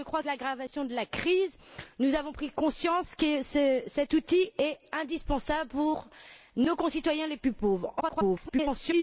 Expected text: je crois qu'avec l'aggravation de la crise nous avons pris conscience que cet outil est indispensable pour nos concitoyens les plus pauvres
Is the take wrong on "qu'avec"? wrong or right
wrong